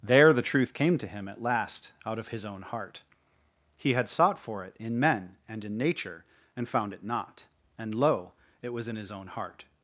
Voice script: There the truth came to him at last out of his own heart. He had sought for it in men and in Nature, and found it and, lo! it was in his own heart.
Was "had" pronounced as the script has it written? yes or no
yes